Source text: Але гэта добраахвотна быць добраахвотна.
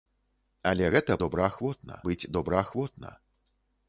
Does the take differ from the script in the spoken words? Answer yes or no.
no